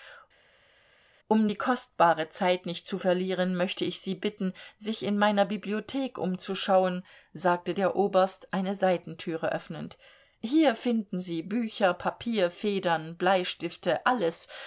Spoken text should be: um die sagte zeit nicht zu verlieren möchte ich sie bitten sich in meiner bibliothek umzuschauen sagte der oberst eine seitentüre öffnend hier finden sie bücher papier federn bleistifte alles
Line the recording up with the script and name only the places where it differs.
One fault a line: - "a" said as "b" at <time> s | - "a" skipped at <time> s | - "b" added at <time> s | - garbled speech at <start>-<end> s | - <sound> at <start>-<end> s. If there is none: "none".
- "sagte" said as "kostbare" at 1.6 s